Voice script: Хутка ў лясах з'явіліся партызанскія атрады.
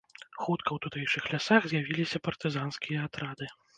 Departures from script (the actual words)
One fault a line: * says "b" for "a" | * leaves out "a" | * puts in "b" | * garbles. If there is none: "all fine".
* puts in "тутэйшых"